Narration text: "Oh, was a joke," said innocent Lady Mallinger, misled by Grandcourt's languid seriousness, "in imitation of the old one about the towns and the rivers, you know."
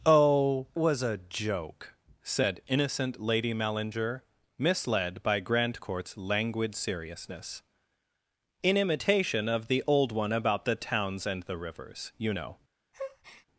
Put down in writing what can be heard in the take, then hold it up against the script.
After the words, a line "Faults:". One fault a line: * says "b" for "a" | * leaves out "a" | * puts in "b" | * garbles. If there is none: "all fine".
"Oh, was a joke," said innocent Lady Mallinger, misled by Grandcourt's languid seriousness, "in imitation of the old one about the towns and the rivers, you know."
Faults:
all fine